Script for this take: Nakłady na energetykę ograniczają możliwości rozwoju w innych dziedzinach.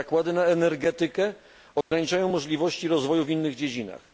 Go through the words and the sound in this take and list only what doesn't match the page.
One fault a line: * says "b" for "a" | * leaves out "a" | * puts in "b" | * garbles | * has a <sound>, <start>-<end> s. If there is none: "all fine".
* has a dropout, 1.8-1.9 s